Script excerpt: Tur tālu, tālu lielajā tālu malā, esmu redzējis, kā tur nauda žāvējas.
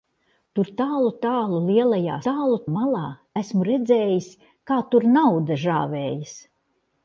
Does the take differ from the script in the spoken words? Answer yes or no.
no